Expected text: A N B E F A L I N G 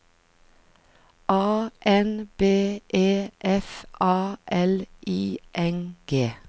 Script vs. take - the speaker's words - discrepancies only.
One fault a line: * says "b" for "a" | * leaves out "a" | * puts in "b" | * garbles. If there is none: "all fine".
all fine